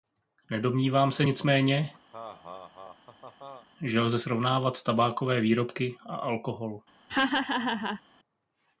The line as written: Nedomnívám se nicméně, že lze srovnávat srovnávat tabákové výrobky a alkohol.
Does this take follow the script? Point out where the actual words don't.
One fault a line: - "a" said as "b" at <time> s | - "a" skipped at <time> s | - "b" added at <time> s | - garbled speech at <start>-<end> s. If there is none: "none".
- "srovnávat" skipped at 4.8 s